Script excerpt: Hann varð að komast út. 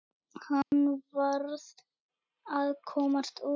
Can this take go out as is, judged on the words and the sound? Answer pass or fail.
fail